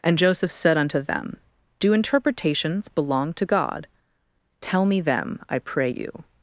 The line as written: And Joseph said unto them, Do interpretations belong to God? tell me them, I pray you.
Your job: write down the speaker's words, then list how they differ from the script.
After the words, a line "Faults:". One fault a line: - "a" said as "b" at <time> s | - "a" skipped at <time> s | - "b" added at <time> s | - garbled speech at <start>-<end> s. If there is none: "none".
And Joseph said unto them, Do interpretations belong to God? tell me them, I pray you.
Faults:
none